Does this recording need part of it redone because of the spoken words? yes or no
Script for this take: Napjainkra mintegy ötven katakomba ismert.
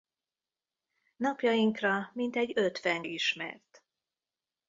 yes